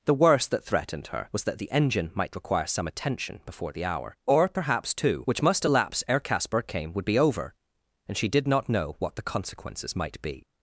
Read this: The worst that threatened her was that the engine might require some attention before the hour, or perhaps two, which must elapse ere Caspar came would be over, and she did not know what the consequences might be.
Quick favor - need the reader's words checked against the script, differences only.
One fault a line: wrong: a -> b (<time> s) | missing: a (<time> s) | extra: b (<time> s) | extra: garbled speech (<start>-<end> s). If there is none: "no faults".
no faults